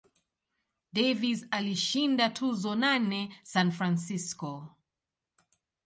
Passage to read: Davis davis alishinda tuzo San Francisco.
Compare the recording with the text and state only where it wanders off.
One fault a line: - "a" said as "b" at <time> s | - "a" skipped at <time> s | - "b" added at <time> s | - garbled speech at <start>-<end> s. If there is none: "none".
- "davis" skipped at 1.4 s
- "nane" added at 2.8 s